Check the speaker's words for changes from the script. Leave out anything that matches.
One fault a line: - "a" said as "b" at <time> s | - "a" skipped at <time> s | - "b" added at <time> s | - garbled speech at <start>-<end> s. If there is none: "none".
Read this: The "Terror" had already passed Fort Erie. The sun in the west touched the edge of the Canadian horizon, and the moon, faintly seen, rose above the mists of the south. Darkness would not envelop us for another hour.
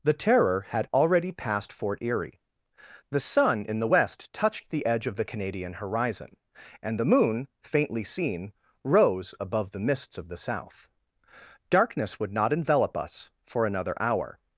none